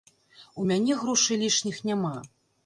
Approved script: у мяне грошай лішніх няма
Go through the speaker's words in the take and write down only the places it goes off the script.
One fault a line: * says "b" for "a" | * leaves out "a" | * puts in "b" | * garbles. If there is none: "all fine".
all fine